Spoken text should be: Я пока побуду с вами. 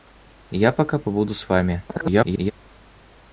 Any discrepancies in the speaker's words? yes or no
yes